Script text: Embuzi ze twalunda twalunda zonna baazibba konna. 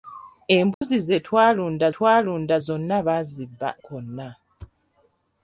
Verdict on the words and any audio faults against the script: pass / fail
fail